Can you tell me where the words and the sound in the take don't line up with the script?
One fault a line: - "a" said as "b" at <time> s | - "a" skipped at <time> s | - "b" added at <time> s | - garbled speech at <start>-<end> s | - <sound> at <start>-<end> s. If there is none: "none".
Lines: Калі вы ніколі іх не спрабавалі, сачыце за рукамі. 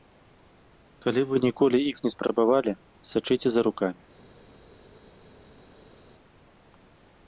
none